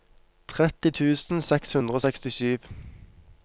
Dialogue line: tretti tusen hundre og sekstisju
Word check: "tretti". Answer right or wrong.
right